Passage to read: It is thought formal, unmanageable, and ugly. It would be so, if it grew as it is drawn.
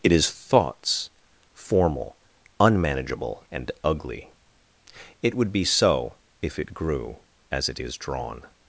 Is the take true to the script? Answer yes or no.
no